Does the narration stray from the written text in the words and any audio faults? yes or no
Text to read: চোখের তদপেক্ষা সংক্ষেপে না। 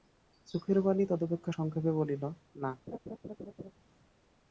yes